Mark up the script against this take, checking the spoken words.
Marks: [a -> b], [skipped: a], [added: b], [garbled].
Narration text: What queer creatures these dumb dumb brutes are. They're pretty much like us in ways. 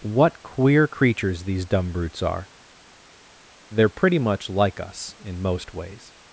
What queer creatures these dumb [skipped: dumb] brutes are. They're pretty much like us in [added: most] ways.